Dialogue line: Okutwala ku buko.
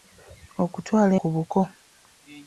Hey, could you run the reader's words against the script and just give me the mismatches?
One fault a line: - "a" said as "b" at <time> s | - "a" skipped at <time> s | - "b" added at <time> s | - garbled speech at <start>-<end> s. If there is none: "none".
none